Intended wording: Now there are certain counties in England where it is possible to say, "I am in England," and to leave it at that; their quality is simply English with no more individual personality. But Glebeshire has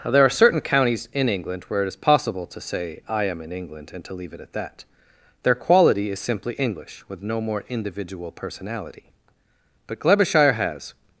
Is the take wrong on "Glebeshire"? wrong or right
right